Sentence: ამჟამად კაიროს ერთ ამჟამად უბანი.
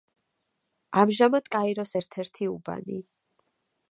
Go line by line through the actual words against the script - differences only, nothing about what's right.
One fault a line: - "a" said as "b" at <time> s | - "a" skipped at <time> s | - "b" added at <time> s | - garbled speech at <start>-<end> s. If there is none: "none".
- "ამჟამად" said as "ერთი" at 2.2 s